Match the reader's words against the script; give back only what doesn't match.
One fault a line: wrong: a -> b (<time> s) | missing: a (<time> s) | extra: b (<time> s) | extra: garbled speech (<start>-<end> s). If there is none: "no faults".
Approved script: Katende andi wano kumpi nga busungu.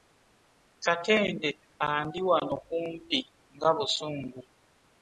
no faults